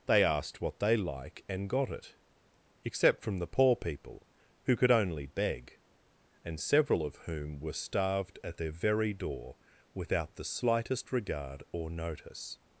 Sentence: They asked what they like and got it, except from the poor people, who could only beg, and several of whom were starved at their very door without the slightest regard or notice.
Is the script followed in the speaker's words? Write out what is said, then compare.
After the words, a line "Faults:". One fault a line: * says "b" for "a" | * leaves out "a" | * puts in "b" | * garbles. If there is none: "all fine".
They asked what they like and got it, except from the poor people, who could only beg, and several of whom were starved at their very door without the slightest regard or notice.
Faults:
all fine